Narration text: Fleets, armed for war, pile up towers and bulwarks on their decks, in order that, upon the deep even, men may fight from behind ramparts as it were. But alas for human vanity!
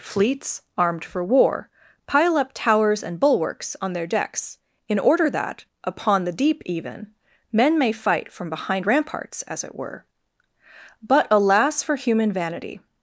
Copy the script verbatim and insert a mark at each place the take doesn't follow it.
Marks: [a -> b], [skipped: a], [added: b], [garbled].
Fleets, armed for war, pile up towers and bulwarks on their decks, in order that, upon the deep even, men may fight from behind ramparts as it were. But alas for human vanity!